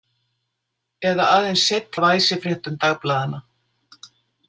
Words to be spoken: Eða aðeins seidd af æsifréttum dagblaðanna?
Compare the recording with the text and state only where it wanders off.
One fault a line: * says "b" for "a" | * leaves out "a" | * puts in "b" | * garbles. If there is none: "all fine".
all fine